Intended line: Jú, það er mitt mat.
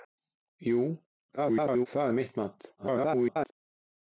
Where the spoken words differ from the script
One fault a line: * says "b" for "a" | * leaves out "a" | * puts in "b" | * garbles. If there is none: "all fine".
* garbles
* garbles